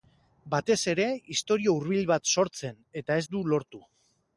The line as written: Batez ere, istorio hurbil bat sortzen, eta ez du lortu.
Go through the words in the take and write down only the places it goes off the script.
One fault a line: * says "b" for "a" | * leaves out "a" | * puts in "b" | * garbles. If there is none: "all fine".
all fine